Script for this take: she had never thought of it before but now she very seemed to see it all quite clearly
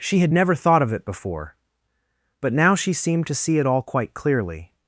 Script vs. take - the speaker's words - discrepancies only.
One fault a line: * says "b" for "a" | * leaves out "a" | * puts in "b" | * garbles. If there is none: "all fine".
* leaves out "very"